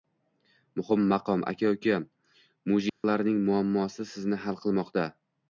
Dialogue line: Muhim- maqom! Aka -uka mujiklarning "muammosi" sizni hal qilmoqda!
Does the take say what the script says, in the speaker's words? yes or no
yes